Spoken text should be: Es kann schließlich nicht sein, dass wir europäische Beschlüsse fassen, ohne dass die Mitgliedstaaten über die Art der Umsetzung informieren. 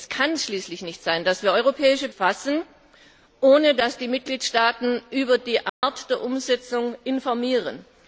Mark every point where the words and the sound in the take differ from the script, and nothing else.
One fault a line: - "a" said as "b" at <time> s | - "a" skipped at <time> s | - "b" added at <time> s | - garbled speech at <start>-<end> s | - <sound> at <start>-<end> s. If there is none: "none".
- "Beschlüsse" skipped at 2.1 s
- dropout at 5.7-5.8 s